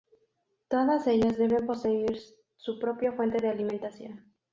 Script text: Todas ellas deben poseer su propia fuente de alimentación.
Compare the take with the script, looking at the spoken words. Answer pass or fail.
pass